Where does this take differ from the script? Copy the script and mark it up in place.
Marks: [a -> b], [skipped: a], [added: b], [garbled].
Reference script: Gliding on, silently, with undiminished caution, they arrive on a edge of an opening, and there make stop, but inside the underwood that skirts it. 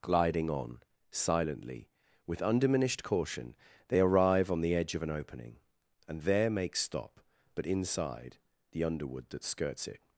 Gliding on, silently, with undiminished caution, they arrive on [a -> the] edge of an opening, and there make stop, but inside the underwood that skirts it.